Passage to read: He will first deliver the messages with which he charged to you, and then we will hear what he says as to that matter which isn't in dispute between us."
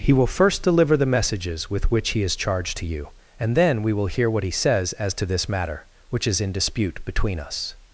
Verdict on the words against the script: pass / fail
fail